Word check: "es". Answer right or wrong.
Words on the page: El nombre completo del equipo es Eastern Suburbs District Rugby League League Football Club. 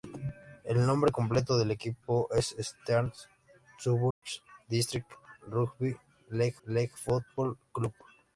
right